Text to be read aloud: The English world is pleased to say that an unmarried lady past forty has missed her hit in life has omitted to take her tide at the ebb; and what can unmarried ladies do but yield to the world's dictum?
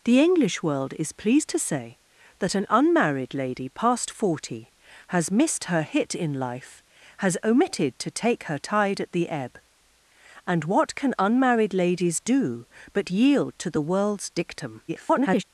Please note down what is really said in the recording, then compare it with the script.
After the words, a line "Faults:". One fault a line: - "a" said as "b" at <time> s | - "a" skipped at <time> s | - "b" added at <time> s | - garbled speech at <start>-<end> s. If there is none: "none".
The English world is pleased to say that an unmarried lady past forty has missed her hit in life has omitted to take her tide at the ebb; and what can unmarried ladies do but yield to the world's dictum? [garbled]
Faults:
- garbled speech at 14.9-15.4 s